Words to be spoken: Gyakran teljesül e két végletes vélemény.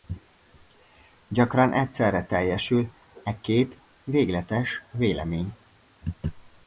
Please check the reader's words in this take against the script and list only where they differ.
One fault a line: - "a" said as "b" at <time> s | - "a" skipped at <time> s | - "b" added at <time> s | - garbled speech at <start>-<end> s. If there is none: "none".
- "egyszerre" added at 1.7 s